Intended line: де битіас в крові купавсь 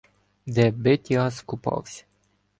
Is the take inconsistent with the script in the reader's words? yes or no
yes